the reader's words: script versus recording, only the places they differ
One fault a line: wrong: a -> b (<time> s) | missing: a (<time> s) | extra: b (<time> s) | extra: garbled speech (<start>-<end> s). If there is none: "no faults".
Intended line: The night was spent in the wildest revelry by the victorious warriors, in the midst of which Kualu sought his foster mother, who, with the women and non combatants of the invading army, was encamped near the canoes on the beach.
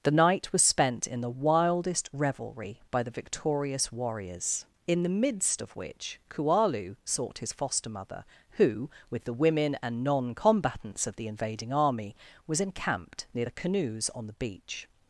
no faults